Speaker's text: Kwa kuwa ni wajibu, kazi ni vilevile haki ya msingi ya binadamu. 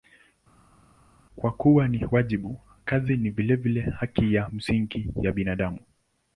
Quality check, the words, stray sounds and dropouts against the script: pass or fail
pass